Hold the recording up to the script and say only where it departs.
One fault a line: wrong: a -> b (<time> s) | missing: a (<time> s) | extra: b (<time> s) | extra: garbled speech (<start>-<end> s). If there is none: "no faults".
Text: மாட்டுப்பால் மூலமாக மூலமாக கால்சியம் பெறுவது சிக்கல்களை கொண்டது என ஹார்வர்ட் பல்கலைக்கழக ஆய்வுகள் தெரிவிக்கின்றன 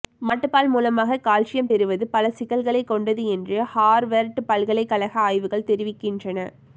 missing: மூலமாக (1.2 s)
extra: பல (2.1 s)
wrong: என -> என்று (3.3 s)